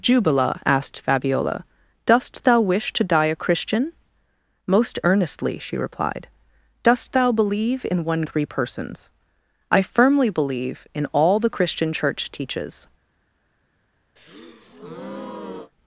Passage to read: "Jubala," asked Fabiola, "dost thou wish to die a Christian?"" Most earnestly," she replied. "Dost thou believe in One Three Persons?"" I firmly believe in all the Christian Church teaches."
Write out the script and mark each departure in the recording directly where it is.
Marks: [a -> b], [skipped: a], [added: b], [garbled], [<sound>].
"Jubala," asked Fabiola, "dost thou wish to die a Christian?"" Most earnestly," she replied. "Dost thou believe in One Three Persons?"" I firmly believe in all the Christian Church teaches." [breath]